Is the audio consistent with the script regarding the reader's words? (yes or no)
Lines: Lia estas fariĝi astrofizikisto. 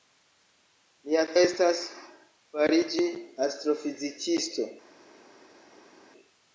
yes